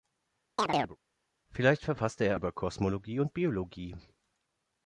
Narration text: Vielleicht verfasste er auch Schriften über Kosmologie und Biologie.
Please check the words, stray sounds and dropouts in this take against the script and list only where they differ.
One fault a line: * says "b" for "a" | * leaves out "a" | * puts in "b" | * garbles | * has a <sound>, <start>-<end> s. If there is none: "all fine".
* has a chirp, 0.6-1.0 s
* leaves out "auch Schriften"